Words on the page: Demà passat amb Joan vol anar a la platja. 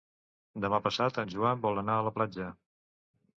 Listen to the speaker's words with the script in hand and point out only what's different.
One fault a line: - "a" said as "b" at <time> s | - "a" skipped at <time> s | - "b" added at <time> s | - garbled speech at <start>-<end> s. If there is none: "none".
- "amb" said as "en" at 1.2 s